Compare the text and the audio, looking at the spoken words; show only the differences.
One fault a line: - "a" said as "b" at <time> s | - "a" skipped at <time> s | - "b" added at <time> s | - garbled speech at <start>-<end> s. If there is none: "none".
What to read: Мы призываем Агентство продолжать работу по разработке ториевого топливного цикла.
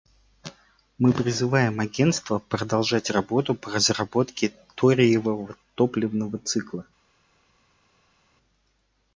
none